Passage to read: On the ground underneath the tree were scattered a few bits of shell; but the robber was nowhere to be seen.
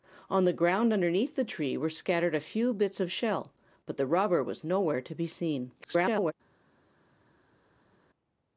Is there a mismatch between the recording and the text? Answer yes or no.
yes